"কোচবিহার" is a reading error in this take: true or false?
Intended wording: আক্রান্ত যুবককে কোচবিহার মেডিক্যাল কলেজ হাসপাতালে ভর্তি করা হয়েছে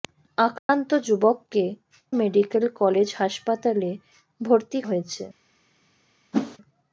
true